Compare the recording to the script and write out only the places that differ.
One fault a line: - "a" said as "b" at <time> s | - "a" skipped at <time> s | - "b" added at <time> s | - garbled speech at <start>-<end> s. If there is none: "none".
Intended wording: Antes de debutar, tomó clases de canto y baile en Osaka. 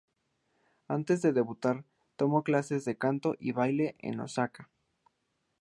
none